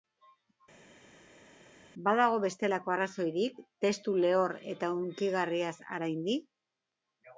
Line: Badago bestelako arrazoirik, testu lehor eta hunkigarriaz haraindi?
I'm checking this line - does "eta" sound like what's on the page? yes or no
yes